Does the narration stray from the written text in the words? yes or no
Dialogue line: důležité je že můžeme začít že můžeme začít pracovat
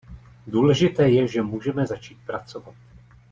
yes